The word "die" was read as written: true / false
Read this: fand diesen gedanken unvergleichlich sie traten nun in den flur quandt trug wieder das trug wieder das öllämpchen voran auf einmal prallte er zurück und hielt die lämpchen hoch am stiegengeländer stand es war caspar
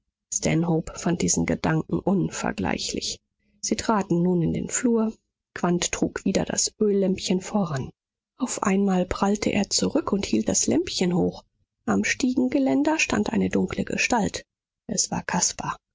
false